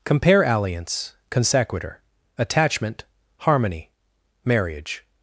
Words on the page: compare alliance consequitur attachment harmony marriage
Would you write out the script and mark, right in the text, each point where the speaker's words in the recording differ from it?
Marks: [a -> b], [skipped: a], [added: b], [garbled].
compare alliance consequitur attachment harmony marriage